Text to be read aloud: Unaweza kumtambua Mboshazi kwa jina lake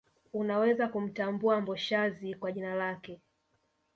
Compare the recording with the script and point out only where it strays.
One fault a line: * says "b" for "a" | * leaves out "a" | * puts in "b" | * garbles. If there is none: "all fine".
all fine